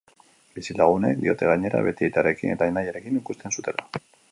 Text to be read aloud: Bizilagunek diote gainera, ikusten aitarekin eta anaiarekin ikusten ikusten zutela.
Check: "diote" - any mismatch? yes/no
no